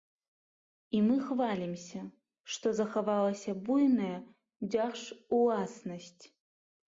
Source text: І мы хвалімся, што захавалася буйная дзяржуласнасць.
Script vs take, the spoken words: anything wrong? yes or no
no